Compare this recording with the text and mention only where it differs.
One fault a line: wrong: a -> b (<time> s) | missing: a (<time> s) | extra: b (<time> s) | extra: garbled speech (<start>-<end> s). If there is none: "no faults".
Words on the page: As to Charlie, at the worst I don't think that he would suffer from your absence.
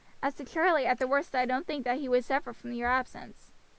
no faults